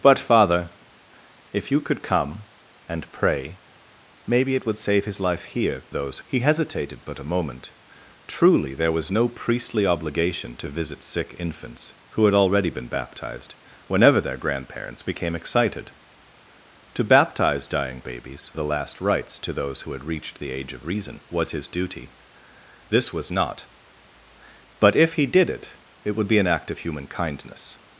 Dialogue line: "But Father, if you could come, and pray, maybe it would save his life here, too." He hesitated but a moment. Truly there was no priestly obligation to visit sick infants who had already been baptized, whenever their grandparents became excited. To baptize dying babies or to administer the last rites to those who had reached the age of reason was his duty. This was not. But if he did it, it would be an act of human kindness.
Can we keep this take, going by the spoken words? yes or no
no